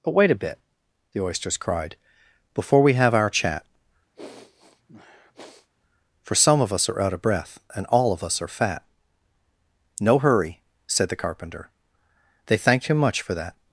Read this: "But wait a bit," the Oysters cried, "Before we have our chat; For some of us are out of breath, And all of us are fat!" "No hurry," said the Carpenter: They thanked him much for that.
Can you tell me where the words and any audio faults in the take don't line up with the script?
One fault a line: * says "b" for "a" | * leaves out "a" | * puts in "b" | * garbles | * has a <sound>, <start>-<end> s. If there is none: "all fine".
* has a sniff, 4.1-5.7 s